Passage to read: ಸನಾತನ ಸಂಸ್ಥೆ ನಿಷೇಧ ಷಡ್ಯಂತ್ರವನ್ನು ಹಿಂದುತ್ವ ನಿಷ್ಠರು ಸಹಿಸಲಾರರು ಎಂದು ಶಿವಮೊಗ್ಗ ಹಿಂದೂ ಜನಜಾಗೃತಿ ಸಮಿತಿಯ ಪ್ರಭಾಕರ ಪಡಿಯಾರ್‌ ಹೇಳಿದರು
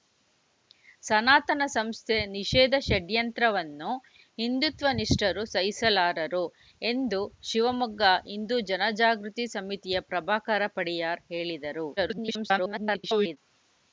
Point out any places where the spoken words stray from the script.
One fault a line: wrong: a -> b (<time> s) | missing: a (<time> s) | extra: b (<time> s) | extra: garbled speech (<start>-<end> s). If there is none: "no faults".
extra: garbled speech (12.0-13.4 s)